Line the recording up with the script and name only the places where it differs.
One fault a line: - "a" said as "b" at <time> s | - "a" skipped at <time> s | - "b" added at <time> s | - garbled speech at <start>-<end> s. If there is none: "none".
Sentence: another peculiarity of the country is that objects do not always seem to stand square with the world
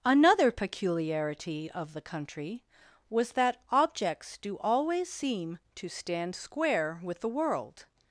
- "is" said as "was" at 3.1 s
- "not" skipped at 4.6 s